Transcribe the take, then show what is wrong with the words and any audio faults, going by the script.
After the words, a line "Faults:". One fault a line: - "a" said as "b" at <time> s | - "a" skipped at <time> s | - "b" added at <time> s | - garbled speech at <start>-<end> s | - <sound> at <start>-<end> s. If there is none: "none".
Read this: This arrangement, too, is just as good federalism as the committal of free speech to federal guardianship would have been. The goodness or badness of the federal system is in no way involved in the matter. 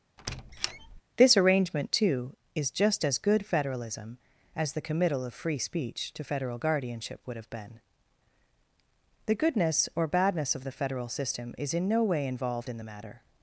This arrangement, too, is just as good federalism as the committal of free speech to federal guardianship would have been. The goodness or badness of the federal system is in no way involved in the matter.
Faults:
- squeak at 0.2-1.0 s